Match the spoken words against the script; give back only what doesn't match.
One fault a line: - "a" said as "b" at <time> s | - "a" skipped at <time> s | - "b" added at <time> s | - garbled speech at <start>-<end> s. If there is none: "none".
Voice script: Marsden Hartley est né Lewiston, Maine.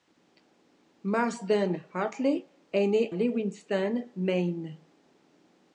none